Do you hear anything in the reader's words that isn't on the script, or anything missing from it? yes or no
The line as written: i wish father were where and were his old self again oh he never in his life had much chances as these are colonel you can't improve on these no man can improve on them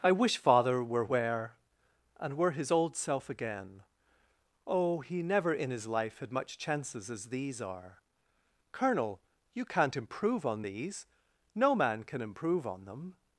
no